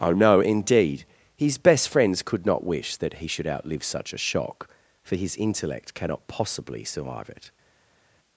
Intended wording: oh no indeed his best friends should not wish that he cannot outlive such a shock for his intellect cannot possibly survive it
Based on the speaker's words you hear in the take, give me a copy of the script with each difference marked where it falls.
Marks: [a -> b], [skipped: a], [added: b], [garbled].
oh no indeed his best friends [should -> could] not wish that he [cannot -> should] outlive such a shock for his intellect cannot possibly survive it